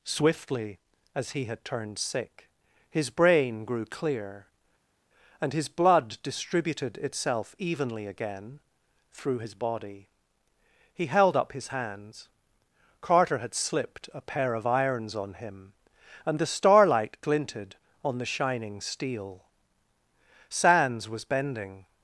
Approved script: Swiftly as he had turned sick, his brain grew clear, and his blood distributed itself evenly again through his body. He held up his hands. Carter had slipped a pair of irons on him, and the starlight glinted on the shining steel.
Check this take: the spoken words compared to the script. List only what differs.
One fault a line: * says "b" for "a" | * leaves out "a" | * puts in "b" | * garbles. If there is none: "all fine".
* puts in "Sands was bending"